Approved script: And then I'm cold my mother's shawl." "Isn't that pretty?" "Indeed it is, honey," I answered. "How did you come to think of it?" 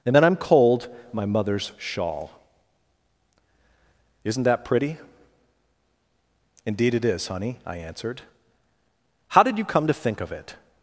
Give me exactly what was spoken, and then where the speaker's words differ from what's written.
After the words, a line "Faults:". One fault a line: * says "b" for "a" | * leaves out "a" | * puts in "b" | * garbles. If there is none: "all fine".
And then I'm cold my mother's shawl." "Isn't that pretty?" "Indeed it is, honey," I answered. "How did you come to think of it?"
Faults:
all fine